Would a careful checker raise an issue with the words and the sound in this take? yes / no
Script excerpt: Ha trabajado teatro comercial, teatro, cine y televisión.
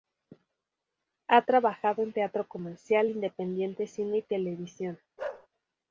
yes